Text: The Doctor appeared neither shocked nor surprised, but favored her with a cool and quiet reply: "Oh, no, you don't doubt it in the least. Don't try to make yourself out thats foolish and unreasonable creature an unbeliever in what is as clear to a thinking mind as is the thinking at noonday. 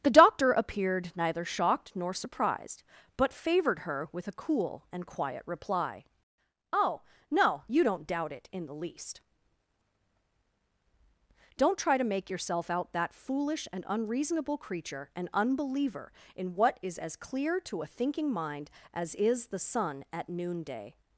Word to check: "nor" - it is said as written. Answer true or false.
true